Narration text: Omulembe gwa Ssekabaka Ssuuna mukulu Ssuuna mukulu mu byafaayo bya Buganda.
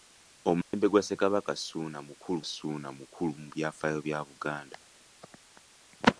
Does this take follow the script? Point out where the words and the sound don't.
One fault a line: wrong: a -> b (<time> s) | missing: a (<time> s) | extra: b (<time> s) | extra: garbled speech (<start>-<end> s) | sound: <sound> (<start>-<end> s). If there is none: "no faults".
sound: dropout (0.6-0.7 s)